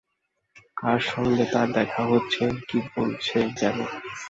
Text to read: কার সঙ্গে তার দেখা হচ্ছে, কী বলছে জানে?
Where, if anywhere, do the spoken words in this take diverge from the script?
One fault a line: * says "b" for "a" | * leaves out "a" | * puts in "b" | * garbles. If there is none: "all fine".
all fine